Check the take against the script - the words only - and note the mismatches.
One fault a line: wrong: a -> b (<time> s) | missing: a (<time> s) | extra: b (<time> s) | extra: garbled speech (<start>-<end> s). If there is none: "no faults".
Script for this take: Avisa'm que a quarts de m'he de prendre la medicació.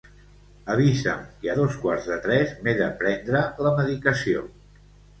extra: dos (1.6 s)
extra: tres (2.3 s)